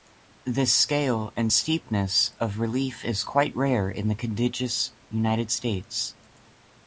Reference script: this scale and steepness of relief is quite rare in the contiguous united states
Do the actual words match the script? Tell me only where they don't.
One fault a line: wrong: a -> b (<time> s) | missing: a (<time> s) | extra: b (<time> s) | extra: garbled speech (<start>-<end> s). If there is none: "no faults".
no faults